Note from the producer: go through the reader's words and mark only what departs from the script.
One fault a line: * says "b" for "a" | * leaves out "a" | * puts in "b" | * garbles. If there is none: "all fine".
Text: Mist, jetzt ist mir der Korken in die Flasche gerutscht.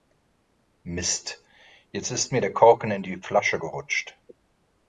all fine